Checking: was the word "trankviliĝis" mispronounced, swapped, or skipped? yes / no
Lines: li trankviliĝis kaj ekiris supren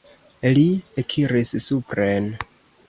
yes